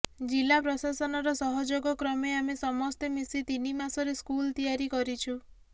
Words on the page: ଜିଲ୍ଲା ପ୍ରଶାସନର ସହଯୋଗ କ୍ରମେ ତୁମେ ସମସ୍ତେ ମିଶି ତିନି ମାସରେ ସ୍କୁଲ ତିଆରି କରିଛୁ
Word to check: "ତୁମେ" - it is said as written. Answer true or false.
false